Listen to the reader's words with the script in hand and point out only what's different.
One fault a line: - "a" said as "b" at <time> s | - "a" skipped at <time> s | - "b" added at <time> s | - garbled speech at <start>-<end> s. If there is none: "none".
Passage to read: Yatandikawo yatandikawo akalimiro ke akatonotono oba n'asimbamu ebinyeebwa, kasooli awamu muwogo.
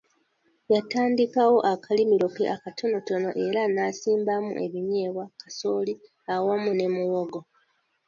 - "yatandikawo" skipped at 1.6 s
- "oba" said as "era" at 3.5 s
- "ne" added at 6.7 s